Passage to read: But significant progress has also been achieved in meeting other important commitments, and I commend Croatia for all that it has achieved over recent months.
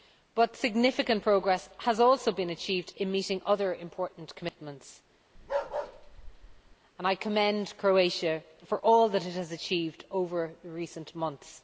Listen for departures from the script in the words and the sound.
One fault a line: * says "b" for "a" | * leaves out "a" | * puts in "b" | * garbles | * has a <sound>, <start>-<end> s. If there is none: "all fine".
* has a bark, 5.4-6.8 s